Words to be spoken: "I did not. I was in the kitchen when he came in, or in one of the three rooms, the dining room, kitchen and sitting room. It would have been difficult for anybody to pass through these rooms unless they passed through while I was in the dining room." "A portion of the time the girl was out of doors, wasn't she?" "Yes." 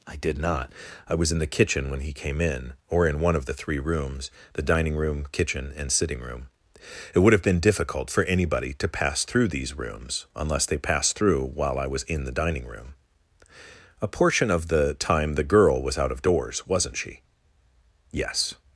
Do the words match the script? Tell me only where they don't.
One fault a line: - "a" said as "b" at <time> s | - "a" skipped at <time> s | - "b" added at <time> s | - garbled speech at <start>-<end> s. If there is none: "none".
none